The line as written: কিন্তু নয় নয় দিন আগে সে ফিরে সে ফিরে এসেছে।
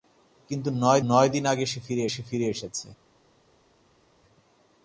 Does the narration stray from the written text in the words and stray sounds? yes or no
no